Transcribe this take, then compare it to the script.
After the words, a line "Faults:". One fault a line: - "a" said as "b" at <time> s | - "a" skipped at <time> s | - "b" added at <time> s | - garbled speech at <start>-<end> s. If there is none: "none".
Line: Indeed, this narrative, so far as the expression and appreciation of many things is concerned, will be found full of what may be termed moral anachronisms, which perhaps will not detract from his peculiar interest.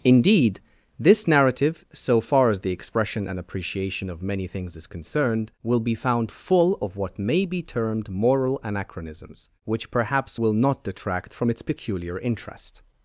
Indeed, this narrative, so far as the expression and appreciation of many things is concerned, will be found full of what may be termed moral anachronisms, which perhaps will not detract from its peculiar interest.
Faults:
- "his" said as "its" at 11.5 s